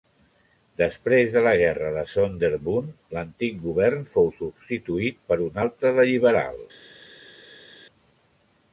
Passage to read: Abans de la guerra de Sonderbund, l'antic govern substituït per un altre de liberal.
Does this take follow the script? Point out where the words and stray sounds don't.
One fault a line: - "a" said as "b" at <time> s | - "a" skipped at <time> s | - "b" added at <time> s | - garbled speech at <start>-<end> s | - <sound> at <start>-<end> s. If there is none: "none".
- "Abans" said as "Després" at 0.8 s
- "fou" added at 4.2 s